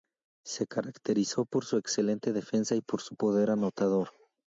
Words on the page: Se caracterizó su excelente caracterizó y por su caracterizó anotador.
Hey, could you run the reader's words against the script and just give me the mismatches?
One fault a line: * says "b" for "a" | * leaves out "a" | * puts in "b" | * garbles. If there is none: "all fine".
* puts in "por"
* says "defensa" for "caracterizó"
* says "poder" for "caracterizó"